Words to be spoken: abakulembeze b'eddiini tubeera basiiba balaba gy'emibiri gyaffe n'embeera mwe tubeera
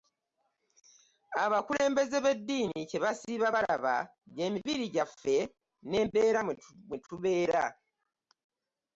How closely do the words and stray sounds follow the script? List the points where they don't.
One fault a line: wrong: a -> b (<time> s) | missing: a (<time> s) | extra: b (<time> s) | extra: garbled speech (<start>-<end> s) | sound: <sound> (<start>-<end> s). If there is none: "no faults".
wrong: tubeera -> kye (2.9 s)